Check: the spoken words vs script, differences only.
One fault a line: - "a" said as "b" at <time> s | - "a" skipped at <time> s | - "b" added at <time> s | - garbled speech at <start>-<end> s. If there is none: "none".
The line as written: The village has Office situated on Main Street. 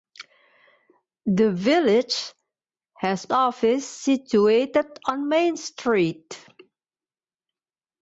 none